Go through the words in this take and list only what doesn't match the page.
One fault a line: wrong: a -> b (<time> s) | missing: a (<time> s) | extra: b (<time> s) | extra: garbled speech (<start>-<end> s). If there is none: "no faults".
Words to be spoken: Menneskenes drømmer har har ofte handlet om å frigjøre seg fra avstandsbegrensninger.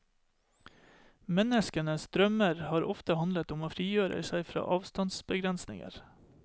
missing: har (2.9 s)